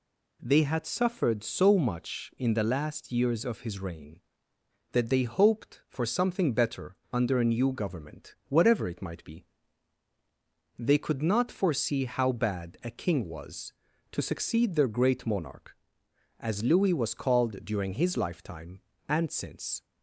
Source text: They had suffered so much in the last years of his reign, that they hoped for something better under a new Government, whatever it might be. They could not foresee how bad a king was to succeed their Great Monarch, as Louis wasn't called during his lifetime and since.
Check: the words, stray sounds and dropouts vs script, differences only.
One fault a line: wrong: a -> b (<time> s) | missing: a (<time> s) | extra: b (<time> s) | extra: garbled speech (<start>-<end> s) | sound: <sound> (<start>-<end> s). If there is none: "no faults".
wrong: wasn't -> was (16.9 s)